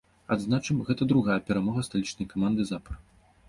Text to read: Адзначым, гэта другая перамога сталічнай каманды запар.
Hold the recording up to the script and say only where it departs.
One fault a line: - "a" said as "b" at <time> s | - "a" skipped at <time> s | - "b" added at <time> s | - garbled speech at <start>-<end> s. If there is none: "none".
none